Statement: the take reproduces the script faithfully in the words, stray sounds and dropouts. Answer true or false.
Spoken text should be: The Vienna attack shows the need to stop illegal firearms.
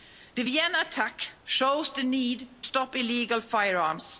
false